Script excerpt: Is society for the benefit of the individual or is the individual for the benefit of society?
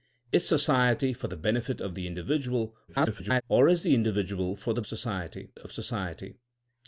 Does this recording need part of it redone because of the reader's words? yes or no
yes